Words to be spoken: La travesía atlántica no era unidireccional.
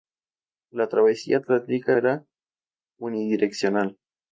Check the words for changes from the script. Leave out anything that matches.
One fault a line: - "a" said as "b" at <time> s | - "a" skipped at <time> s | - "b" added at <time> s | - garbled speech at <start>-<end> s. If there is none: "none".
- "no" skipped at 2.0 s